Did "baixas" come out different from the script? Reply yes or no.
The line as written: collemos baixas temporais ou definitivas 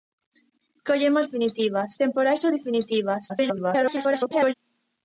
yes